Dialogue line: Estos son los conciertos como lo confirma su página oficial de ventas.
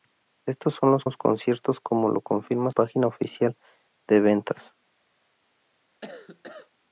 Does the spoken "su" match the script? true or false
false